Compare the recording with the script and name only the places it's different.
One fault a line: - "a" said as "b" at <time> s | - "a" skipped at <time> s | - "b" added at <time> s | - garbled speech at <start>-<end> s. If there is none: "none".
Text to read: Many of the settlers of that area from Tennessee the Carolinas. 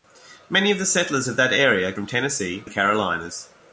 none